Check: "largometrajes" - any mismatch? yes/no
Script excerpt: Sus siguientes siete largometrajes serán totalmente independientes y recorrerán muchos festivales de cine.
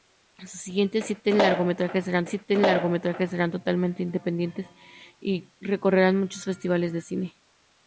no